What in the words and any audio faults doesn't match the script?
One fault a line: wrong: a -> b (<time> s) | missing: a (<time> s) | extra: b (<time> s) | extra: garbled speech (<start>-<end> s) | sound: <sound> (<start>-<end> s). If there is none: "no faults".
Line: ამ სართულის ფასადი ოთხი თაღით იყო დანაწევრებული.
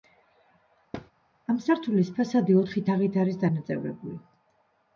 sound: thud (0.9-1.1 s)
wrong: იყო -> არის (3.3 s)